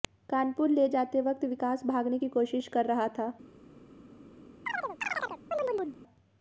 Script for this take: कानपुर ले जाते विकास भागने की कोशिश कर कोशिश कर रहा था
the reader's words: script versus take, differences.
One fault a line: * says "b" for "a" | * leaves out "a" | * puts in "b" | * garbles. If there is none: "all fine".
* puts in "वक्त"
* leaves out "कोशिश कर"